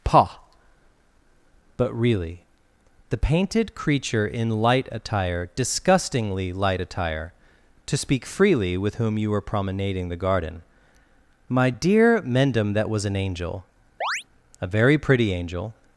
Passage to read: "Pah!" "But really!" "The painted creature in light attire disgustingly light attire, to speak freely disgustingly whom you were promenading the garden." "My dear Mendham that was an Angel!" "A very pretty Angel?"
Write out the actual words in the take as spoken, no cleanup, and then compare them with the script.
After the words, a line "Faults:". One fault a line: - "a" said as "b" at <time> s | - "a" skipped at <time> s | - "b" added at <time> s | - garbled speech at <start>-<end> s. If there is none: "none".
"Pah!" "But really!" "The painted creature in light attire disgustingly light attire, to speak freely with whom you were promenading the garden." "My dear Mendham that was an Angel!" "A very pretty Angel?"
Faults:
- "disgustingly" said as "with" at 8.8 s